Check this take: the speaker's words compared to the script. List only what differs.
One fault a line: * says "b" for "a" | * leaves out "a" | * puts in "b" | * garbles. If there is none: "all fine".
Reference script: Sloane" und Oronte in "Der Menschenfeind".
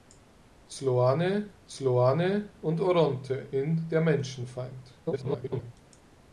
* puts in "sloane"
* garbles